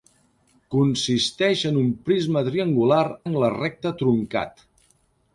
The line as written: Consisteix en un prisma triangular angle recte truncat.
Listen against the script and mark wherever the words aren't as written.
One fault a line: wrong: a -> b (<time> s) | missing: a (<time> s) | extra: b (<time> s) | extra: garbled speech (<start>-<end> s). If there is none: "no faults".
no faults